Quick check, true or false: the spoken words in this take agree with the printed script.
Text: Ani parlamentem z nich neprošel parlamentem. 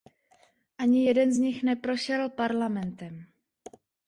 false